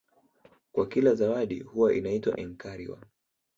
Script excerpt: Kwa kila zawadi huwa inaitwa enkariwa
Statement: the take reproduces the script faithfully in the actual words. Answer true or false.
true